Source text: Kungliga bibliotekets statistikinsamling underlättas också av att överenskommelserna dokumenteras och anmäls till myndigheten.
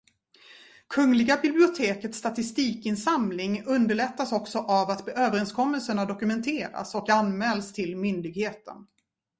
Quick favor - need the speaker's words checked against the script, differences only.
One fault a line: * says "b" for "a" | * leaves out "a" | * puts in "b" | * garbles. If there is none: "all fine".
all fine